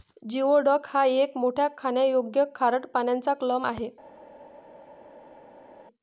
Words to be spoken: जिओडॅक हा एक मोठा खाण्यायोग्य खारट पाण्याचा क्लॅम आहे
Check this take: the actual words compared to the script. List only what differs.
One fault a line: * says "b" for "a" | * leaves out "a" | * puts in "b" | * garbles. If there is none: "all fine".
all fine